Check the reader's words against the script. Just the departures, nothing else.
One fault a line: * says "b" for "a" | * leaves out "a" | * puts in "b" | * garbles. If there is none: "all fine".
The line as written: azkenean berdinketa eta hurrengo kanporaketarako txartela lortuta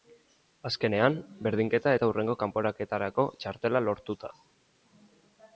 all fine